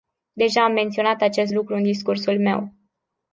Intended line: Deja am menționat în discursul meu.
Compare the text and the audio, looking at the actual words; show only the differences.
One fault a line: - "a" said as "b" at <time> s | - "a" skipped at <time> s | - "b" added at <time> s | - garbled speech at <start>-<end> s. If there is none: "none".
- "acest lucru" added at 1.2 s